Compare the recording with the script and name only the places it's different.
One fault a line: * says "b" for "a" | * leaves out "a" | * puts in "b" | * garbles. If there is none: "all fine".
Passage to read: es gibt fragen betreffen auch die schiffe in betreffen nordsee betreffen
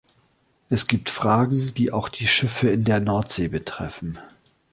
* says "die" for "betreffen"
* says "der" for "betreffen"